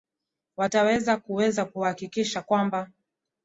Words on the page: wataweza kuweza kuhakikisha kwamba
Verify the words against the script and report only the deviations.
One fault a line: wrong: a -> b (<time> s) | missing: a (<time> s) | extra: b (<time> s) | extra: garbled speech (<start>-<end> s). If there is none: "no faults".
no faults